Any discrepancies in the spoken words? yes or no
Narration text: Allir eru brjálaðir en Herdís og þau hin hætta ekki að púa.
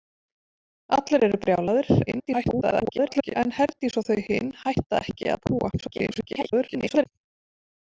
yes